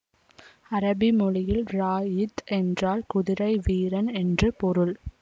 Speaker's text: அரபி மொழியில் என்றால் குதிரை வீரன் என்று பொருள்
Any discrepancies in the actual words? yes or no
yes